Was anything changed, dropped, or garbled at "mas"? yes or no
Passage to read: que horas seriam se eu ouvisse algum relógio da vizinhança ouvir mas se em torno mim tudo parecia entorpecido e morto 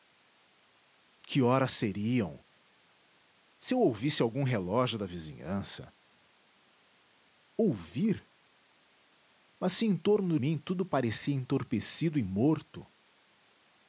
no